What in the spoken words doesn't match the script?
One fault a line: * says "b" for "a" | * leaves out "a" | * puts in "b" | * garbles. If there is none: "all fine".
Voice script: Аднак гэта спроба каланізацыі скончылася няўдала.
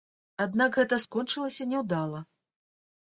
* leaves out "спроба каланізацыі"